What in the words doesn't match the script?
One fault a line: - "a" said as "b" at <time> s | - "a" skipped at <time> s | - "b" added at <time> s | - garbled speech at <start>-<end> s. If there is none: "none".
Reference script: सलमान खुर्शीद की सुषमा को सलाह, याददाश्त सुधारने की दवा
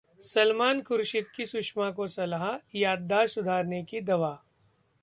none